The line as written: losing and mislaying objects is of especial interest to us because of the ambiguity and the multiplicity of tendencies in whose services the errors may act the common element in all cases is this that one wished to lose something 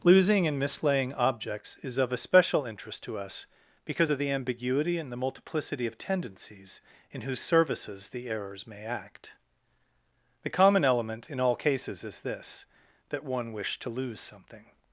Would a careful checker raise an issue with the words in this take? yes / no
no